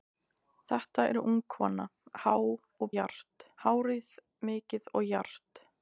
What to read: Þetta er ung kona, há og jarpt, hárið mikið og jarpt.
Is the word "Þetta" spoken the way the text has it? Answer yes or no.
yes